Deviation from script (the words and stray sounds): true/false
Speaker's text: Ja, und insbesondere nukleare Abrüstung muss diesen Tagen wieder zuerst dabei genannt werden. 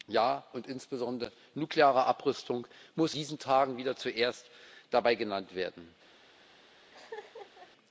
true